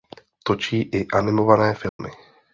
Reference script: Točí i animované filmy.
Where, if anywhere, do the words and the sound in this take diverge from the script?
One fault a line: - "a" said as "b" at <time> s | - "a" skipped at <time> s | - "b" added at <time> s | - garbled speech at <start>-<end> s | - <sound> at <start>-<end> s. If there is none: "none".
- dropout at 1.9-2.0 s